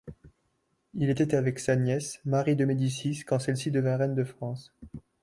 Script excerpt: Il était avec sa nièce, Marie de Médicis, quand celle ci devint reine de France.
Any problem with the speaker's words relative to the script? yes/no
no